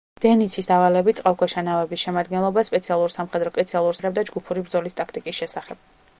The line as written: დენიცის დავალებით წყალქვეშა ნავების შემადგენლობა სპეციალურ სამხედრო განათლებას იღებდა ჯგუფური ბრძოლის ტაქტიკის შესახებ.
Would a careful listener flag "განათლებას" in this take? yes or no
yes